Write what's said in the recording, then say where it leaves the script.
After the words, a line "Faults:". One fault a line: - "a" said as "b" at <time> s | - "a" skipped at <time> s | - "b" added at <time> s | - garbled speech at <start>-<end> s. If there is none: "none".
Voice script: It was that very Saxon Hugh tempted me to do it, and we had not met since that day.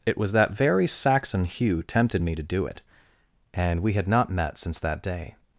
It was that very Saxon Hugh tempted me to do it, and we had not met since that day.
Faults:
none